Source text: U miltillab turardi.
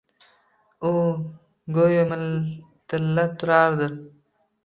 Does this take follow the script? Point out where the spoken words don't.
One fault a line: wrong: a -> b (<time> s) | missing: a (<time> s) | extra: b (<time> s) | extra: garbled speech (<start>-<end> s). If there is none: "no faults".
extra: go‘yo (1.8 s)